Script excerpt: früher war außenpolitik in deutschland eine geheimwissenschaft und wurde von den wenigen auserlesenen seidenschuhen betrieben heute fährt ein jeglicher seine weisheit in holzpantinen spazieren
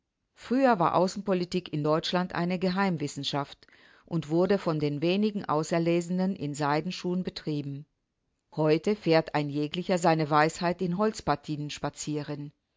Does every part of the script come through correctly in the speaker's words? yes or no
no